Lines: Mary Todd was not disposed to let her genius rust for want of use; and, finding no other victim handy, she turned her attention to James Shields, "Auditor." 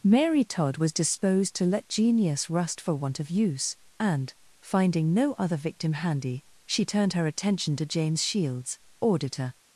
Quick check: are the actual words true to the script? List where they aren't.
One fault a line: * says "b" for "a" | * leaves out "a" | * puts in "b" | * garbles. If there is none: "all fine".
* leaves out "not"
* leaves out "her"